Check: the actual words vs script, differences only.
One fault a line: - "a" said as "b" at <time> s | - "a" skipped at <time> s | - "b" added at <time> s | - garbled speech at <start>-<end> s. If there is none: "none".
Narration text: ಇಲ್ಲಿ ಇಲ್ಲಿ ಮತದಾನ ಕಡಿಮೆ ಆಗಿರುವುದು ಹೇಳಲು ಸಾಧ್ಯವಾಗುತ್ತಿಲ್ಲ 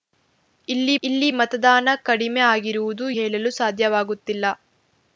none